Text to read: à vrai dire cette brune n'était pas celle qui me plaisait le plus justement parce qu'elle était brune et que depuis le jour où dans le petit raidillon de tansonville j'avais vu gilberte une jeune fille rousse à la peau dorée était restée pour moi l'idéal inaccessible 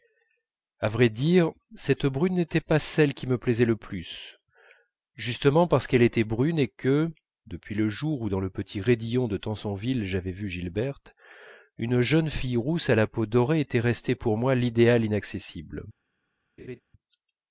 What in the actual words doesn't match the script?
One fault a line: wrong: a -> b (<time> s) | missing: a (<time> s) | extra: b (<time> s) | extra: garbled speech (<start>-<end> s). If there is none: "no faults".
no faults